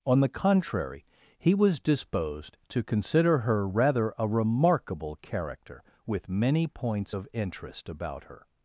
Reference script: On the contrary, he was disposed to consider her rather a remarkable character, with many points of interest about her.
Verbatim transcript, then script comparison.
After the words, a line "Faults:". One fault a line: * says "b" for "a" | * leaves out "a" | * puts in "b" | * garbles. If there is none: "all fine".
On the contrary, he was disposed to consider her rather a remarkable character, with many points of interest about her.
Faults:
all fine